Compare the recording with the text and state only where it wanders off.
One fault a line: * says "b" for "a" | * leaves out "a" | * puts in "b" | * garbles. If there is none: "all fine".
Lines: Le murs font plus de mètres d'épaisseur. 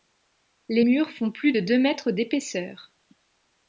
* says "Les" for "Le"
* puts in "deux"